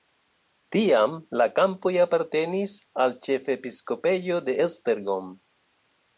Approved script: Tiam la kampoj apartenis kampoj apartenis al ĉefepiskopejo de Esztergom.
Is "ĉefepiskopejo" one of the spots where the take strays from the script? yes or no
no